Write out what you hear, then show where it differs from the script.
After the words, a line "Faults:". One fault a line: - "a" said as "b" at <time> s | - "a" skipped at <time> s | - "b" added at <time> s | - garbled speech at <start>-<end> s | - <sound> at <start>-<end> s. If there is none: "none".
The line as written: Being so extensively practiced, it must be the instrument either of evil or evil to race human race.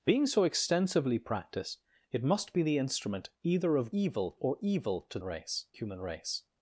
Being so extensively practiced, it must be the instrument either of evil or evil to race human race.
Faults:
none